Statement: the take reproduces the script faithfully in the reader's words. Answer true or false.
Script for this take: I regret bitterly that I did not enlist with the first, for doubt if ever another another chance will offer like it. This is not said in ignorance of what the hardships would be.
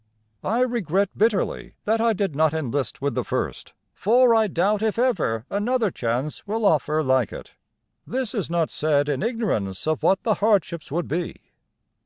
false